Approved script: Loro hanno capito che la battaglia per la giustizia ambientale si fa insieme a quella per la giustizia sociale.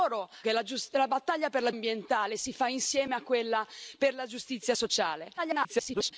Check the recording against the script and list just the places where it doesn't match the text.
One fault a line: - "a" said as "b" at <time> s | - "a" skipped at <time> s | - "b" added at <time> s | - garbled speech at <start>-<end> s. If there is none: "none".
- "hanno capito" skipped at 0.3 s
- "giustizia" skipped at 1.7 s
- garbled speech at 5.4-6.1 s